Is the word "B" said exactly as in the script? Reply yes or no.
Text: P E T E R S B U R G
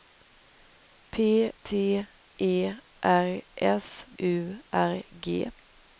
no